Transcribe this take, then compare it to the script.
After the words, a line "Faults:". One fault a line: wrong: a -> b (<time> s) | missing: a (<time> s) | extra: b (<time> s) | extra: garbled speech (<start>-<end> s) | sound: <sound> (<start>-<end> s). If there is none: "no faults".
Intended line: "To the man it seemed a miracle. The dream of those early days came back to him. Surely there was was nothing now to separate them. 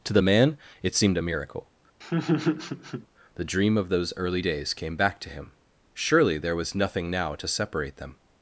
"To the man it seemed a miracle. The dream of those early days came back to him. Surely there was nothing now to separate them.
Faults:
sound: laugh (2.0-3.1 s)
missing: was (6.8 s)